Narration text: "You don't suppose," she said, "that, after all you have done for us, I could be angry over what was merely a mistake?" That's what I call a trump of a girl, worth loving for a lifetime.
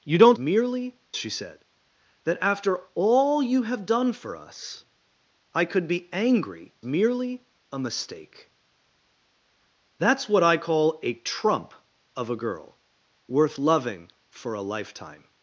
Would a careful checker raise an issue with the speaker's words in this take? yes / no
yes